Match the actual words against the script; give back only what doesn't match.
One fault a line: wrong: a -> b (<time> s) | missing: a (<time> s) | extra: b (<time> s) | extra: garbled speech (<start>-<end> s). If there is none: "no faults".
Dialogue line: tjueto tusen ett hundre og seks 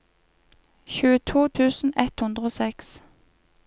no faults